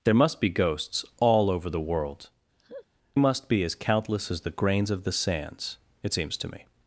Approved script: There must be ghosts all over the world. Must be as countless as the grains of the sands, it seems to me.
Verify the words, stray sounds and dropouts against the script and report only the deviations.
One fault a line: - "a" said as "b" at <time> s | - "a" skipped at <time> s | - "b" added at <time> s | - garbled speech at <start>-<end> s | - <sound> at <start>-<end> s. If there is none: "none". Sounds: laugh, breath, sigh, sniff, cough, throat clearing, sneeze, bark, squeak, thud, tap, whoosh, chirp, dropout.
- laugh at 2.6-2.9 s